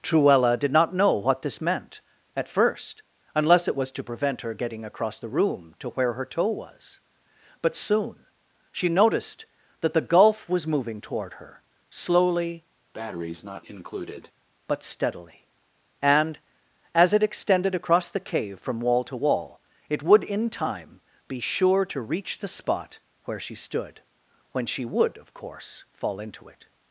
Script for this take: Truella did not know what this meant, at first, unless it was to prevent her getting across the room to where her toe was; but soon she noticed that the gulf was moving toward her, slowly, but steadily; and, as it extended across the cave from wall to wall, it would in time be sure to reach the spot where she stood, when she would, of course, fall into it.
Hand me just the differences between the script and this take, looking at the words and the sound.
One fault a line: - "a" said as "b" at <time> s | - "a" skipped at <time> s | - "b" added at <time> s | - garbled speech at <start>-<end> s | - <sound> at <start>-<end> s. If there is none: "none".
- breath at 12.9-14.3 s